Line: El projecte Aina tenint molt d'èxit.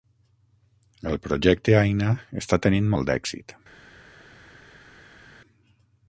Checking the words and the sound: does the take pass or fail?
fail